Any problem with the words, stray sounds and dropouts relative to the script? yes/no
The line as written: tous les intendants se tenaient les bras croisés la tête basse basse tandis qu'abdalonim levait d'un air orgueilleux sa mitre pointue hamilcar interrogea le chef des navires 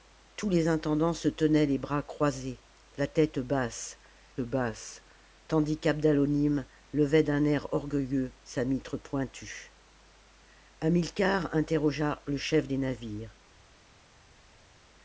no